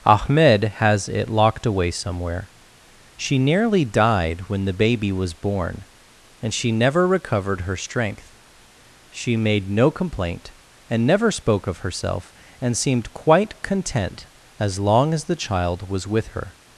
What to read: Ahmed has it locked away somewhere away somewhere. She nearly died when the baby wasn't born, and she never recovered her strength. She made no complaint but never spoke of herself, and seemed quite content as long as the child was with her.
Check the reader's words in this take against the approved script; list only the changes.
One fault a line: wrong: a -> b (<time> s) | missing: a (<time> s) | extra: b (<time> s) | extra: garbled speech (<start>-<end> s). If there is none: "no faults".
missing: away somewhere (2.5 s)
wrong: wasn't -> was (5.1 s)
wrong: but -> and (10.9 s)